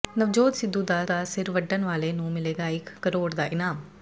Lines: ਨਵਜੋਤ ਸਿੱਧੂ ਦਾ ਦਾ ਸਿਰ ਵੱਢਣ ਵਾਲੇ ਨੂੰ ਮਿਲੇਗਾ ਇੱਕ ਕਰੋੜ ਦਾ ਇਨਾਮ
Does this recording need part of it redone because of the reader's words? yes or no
no